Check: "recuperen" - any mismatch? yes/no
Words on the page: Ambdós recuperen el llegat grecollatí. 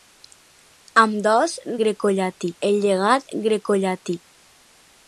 yes